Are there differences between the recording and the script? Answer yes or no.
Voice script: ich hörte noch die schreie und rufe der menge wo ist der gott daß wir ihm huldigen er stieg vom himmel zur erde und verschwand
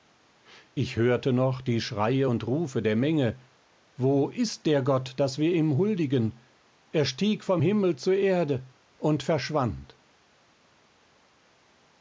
no